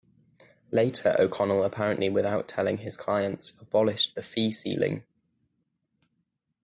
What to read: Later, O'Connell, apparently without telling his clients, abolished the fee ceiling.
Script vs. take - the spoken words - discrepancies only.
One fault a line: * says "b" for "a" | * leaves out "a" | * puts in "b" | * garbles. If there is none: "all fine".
all fine